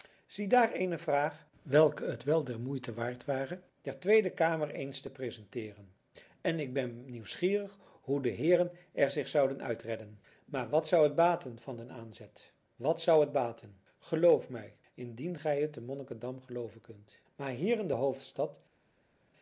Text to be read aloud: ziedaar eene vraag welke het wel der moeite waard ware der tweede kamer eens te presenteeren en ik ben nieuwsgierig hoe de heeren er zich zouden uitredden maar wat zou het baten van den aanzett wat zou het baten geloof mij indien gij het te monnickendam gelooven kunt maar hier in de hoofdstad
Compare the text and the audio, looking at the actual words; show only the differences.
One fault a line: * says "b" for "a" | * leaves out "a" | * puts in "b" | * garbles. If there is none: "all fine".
all fine